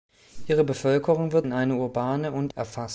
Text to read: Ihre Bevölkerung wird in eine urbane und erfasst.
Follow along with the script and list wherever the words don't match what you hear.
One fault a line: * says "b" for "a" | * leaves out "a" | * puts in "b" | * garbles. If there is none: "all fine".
all fine